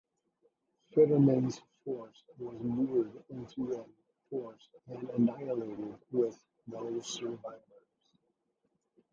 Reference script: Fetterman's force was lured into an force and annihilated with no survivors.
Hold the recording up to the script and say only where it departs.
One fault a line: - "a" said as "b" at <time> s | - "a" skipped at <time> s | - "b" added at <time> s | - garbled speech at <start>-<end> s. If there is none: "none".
none